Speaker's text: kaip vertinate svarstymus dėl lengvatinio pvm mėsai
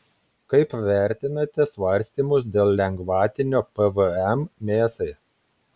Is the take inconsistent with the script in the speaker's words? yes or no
no